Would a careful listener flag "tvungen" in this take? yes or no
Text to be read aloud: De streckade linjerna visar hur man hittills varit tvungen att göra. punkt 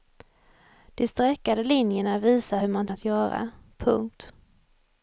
yes